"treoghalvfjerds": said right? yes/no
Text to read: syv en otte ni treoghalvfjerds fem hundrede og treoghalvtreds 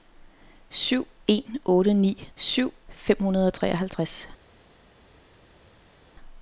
no